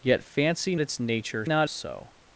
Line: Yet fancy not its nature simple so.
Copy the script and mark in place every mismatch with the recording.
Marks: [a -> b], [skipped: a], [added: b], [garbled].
Yet fancy [skipped: not] its nature [simple -> not] so.